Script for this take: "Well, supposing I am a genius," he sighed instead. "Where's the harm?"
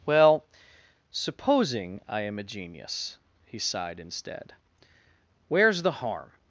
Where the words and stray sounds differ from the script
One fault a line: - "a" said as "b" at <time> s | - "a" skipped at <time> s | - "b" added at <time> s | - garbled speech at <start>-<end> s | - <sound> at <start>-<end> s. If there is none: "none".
none